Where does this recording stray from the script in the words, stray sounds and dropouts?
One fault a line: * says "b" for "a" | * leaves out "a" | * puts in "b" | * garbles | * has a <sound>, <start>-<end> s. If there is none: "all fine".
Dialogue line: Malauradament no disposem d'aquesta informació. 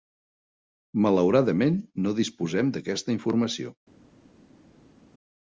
all fine